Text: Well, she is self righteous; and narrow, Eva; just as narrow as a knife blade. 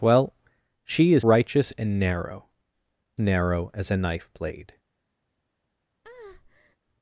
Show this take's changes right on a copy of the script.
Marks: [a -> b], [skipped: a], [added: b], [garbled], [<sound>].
Well, she is [skipped: self] righteous; and narrow, [skipped: Eva; just as] narrow as a knife blade. [breath]